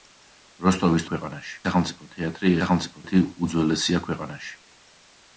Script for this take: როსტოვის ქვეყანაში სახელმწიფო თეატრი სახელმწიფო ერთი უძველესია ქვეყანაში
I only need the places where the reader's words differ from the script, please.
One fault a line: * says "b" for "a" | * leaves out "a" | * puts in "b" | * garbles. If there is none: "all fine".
all fine